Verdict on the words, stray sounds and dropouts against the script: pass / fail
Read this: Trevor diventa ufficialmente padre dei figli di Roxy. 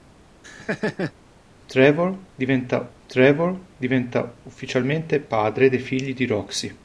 fail